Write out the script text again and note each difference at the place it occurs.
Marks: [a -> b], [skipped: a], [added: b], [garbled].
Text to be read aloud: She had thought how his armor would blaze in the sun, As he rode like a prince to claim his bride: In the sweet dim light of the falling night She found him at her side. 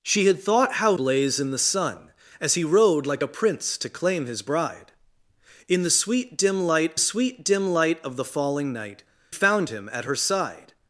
She had thought how [skipped: his armor would] blaze in the sun, As he rode like a prince to claim his bride: In the sweet dim light [added: sweet dim light] of the falling night [skipped: She] found him at her side.